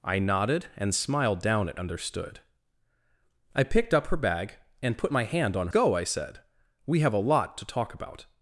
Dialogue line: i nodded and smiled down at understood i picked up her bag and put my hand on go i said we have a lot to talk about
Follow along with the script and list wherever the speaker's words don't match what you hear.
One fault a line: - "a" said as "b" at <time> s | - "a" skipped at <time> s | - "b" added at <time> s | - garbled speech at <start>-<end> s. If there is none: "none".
none